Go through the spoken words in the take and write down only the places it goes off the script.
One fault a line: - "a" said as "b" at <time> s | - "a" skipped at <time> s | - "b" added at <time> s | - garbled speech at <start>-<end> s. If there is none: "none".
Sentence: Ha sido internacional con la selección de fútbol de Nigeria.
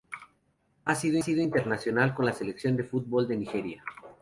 - "sido" added at 1.2 s